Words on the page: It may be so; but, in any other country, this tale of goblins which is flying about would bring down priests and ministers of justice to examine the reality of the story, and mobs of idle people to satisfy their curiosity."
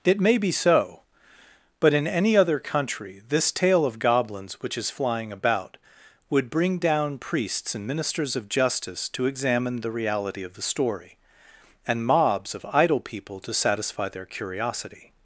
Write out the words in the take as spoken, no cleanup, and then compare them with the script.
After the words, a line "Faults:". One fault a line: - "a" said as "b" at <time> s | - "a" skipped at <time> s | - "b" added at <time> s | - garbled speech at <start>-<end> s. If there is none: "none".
It may be so; but, in any other country, this tale of goblins which is flying about would bring down priests and ministers of justice to examine the reality of the story, and mobs of idle people to satisfy their curiosity."
Faults:
none